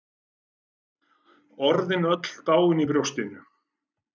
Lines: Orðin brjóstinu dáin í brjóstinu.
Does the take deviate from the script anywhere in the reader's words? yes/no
yes